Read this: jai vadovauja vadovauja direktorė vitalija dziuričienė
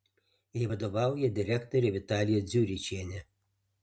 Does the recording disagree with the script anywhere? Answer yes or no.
yes